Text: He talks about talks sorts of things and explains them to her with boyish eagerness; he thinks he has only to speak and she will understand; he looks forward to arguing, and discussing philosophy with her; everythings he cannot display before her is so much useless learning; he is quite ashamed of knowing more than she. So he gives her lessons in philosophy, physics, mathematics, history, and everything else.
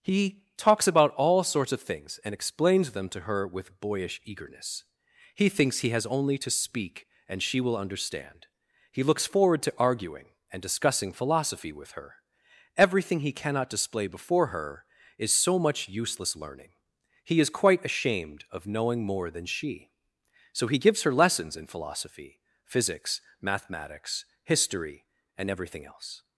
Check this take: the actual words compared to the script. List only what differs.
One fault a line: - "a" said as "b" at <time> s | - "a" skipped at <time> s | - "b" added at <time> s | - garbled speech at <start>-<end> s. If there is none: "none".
- "talks" said as "all" at 1.1 s
- "everythings" said as "everything" at 12.8 s